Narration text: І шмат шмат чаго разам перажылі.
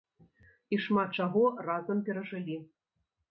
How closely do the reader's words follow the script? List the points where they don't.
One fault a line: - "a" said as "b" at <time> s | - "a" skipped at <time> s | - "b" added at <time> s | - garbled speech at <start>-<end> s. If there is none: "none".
- "шмат" skipped at 1.1 s